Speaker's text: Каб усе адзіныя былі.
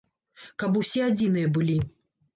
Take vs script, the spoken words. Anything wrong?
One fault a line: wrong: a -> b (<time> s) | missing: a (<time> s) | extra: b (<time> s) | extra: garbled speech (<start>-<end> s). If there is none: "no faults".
no faults